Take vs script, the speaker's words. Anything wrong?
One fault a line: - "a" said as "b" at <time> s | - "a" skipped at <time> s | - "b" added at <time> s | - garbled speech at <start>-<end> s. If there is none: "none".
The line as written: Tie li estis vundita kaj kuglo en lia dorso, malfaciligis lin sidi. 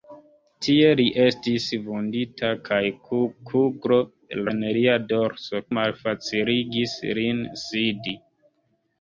none